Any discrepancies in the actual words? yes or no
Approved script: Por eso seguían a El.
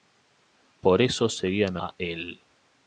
no